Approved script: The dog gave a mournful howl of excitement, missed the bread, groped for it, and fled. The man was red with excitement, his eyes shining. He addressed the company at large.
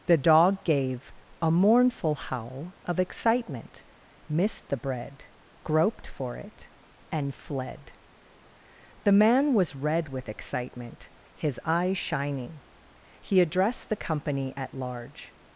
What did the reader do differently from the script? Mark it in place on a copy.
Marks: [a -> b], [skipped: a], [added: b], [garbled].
The dog gave a mournful howl of excitement, missed the bread, groped for it, and fled. The man was red with excitement, his eyes shining. He addressed the company at large.